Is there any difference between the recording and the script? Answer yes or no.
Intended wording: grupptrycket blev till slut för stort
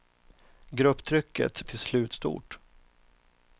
yes